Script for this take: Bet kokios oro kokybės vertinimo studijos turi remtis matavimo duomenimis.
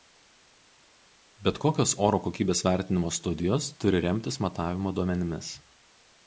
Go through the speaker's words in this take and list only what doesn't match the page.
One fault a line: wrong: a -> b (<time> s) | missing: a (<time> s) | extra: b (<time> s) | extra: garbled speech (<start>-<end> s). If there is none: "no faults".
no faults